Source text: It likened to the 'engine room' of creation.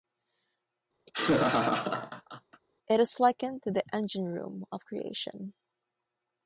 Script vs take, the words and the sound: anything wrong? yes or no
yes